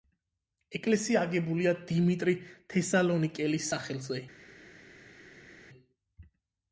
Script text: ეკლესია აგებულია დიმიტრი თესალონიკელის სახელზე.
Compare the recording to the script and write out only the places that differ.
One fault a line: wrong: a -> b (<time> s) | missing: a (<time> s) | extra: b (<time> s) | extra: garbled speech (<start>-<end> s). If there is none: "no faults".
no faults